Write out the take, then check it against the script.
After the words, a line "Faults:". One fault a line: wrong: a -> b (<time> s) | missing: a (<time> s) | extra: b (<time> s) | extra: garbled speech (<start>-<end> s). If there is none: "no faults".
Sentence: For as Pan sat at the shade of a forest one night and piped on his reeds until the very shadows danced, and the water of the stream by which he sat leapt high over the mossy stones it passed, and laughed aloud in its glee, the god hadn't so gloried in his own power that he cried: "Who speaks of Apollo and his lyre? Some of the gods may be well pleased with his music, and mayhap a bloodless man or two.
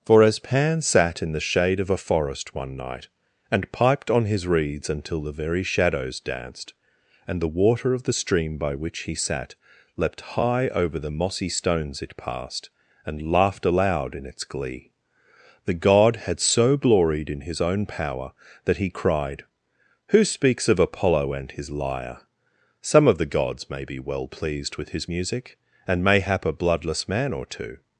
For as Pan sat in the shade of a forest one night and piped on his reeds until the very shadows danced, and the water of the stream by which he sat leapt high over the mossy stones it passed, and laughed aloud in its glee, the god had so gloried in his own power that he cried: "Who speaks of Apollo and his lyre? Some of the gods may be well pleased with his music, and mayhap a bloodless man or two.
Faults:
wrong: at -> in (1.2 s)
wrong: hadn't -> had (16.2 s)